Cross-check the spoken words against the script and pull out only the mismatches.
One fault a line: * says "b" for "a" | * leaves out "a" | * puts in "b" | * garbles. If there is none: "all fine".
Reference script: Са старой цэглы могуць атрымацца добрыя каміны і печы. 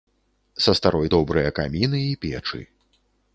* leaves out "цэглы могуць атрымацца"